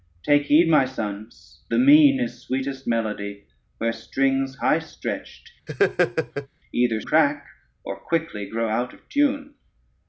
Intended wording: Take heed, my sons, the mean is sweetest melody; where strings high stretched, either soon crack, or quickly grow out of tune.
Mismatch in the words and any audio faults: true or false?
true